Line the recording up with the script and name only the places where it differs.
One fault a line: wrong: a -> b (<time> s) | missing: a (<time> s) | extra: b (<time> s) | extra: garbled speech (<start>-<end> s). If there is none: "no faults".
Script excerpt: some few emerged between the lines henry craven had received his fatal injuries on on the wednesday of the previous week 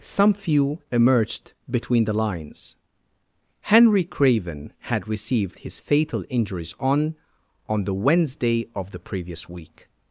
no faults